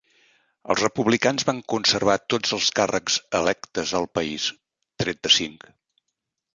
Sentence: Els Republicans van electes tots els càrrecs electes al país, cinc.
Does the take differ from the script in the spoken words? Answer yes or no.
yes